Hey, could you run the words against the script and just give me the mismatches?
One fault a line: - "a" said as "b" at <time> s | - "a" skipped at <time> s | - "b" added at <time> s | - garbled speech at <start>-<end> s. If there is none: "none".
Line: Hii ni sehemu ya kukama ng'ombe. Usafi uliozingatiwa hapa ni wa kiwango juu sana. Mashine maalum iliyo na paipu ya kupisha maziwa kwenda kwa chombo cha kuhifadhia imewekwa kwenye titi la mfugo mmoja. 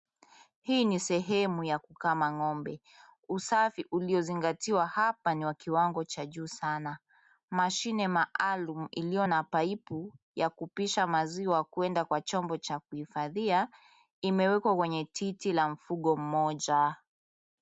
- "cha" added at 6.0 s